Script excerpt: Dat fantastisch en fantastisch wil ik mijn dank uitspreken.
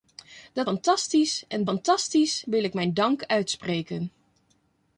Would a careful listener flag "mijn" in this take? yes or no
no